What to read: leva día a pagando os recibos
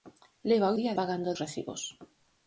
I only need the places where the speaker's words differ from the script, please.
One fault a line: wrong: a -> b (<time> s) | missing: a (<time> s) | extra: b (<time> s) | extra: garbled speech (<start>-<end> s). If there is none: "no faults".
no faults